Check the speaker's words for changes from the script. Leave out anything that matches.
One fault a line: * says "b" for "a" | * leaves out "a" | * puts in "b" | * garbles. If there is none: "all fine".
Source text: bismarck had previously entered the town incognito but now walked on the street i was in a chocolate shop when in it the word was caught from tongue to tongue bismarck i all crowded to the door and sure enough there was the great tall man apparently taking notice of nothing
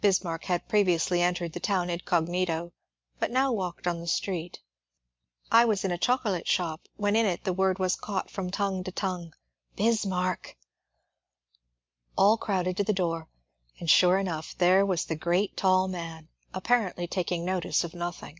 all fine